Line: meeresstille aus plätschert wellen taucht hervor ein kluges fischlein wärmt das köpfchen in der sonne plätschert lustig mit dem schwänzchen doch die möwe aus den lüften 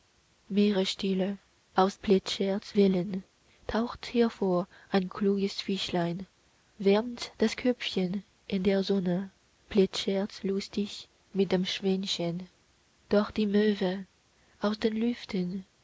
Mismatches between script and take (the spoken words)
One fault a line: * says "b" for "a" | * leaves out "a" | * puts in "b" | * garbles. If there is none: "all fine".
all fine